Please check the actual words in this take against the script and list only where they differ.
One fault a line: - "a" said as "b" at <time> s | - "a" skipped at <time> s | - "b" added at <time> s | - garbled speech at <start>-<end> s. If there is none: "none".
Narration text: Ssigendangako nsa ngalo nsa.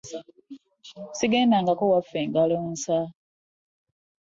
- "nsa" said as "waffe" at 1.9 s